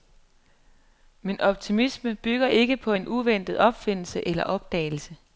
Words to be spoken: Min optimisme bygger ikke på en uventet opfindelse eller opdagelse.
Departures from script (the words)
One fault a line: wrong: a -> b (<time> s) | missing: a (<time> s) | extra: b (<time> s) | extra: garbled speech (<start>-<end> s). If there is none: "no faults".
no faults